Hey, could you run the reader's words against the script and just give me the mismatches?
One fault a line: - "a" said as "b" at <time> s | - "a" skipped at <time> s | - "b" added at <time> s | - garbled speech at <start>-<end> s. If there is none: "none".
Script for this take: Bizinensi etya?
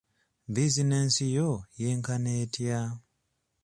- "yo yenkana" added at 1.4 s